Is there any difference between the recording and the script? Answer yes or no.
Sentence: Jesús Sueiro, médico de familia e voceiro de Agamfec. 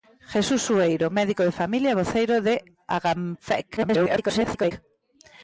yes